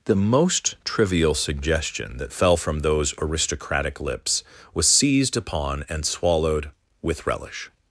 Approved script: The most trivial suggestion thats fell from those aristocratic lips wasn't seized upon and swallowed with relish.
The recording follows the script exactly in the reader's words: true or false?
false